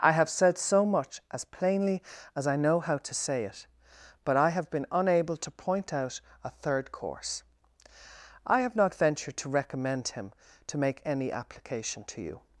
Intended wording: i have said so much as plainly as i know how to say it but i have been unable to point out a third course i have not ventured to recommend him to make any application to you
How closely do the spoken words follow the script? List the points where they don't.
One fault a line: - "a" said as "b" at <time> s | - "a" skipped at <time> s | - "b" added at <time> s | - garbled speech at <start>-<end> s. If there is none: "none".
none